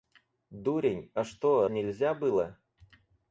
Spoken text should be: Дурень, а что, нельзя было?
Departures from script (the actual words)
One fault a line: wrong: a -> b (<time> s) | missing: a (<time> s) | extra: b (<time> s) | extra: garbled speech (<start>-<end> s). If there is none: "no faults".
no faults